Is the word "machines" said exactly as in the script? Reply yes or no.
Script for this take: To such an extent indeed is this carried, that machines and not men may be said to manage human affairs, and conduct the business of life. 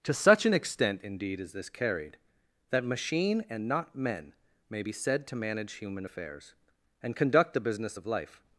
no